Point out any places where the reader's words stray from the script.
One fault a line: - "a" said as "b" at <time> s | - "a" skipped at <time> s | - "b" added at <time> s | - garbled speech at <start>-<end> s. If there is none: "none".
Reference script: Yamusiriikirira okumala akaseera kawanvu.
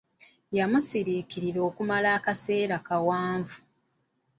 none